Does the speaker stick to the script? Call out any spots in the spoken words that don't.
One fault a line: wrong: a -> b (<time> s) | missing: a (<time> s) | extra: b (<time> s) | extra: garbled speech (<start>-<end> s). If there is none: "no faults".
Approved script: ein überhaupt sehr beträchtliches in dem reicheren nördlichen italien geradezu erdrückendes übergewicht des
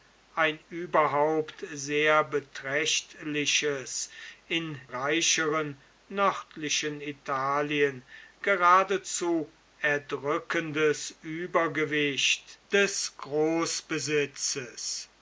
missing: dem (4.8 s)